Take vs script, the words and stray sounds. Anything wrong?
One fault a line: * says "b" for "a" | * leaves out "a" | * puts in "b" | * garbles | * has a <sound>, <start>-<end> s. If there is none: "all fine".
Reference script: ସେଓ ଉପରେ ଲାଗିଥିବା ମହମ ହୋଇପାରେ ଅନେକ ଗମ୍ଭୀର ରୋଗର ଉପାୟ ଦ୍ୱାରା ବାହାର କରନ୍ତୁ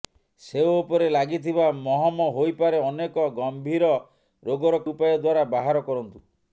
all fine